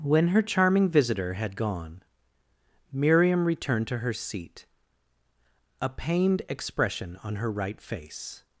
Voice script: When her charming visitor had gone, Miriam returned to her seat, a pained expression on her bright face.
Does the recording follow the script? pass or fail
fail